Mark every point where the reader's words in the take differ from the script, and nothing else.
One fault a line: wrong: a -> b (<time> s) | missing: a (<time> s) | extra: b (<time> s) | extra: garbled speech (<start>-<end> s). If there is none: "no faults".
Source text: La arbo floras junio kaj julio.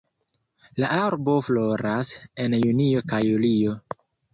extra: en (2.5 s)